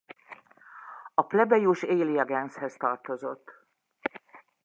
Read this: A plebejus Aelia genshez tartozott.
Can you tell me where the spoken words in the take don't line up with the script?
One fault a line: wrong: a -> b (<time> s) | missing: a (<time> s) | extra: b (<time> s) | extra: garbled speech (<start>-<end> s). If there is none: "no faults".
no faults